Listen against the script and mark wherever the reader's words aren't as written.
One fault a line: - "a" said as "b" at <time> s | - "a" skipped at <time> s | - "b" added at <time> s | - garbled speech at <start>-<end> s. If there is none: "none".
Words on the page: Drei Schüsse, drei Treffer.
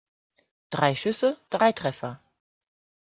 none